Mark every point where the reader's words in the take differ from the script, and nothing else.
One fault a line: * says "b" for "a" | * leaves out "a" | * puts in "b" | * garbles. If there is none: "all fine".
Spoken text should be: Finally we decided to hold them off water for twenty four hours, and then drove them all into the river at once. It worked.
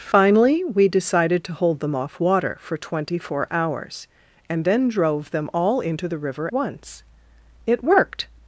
* leaves out "at"